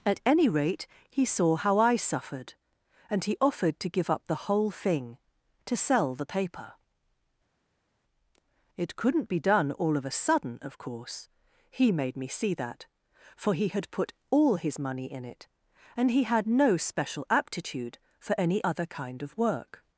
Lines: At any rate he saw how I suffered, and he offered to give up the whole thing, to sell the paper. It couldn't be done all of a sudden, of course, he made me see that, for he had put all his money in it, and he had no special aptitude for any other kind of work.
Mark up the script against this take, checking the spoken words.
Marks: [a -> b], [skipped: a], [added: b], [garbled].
At any rate he saw how I suffered, and he offered to give up the whole thing, to sell the paper. It couldn't be done all of a sudden, of course, he made me see that, for he had put all his money in it, and he had no special aptitude for any other kind of work.